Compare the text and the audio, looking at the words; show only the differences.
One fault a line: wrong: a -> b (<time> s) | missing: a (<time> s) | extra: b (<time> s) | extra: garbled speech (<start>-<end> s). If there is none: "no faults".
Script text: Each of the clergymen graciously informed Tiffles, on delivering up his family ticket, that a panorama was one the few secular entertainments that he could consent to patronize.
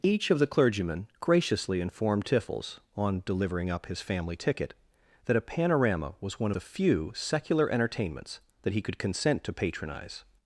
no faults